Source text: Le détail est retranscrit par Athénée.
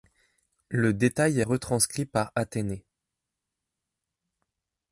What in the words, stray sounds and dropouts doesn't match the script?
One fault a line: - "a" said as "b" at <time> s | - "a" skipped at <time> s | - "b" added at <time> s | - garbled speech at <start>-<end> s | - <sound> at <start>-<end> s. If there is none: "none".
none